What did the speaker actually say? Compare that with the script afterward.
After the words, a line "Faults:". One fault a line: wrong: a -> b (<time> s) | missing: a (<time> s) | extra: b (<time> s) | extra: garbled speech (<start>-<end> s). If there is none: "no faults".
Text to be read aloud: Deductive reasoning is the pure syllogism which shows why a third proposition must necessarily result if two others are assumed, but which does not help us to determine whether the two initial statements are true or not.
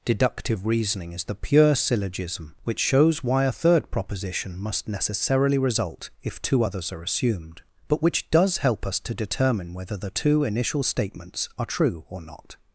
Deductive reasoning is the pure syllogism which shows why a third proposition must necessarily result if two others are assumed, but which does help us to determine whether the two initial statements are true or not.
Faults:
missing: not (8.6 s)